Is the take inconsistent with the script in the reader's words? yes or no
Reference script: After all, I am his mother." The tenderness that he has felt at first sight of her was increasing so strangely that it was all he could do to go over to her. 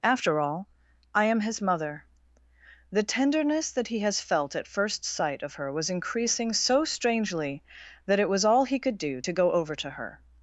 no